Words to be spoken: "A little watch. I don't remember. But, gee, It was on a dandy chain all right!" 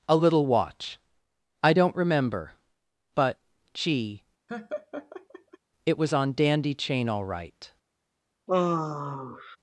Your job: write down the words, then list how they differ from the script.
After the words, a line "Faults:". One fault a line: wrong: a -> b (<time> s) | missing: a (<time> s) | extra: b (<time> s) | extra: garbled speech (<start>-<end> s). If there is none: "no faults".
"A little watch. I don't remember. But, gee, It was on dandy chain all right!"
Faults:
missing: a (6.3 s)